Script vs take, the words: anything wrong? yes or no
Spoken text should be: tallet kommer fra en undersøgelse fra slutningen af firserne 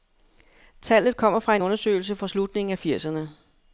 no